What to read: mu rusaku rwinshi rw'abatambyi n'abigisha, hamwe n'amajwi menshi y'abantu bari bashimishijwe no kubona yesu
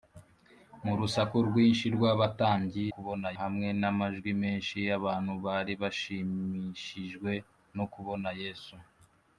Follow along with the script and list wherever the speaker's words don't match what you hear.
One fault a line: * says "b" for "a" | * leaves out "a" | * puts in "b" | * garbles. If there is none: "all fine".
* says "kubona" for "n'abigisha"